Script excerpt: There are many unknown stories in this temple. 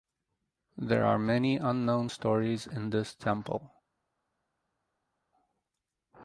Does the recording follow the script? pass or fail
pass